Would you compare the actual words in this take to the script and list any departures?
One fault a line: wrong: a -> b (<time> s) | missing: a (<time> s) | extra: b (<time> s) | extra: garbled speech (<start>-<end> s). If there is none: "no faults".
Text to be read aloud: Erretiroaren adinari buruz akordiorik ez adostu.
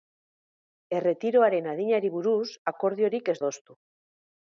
no faults